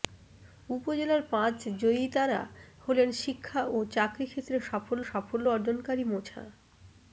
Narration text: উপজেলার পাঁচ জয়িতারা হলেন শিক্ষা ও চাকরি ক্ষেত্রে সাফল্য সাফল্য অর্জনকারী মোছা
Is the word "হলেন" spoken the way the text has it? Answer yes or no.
yes